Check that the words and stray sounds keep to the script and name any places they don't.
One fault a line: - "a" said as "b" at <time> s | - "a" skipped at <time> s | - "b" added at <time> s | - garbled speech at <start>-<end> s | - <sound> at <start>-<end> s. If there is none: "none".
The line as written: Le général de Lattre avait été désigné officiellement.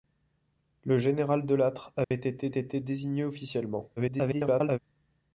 - dropout at 2.0-2.1 s
- "été" added at 2.5 s
- garbled speech at 4.0-4.8 s